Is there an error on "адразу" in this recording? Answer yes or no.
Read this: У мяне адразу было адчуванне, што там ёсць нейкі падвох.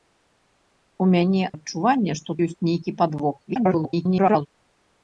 yes